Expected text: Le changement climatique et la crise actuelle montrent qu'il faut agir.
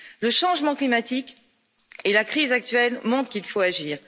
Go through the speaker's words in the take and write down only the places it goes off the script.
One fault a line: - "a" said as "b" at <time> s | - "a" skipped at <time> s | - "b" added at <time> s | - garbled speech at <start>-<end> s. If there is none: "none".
none